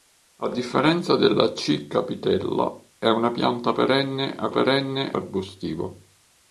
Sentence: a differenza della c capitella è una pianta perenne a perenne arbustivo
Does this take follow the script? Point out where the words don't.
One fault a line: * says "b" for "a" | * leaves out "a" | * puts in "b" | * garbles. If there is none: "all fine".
all fine